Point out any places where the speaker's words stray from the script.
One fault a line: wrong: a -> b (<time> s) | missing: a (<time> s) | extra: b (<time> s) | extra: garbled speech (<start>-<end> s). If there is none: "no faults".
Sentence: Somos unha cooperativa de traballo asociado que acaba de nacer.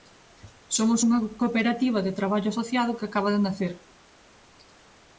no faults